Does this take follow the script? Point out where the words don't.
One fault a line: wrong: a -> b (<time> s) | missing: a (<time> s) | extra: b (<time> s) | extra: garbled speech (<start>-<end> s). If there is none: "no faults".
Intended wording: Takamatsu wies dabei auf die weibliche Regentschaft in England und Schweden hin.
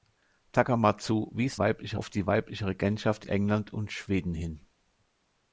wrong: dabei -> weibliche (1.6 s)
missing: in (3.3 s)